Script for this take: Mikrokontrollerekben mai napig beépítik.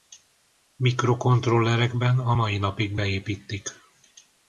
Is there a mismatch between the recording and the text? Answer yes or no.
yes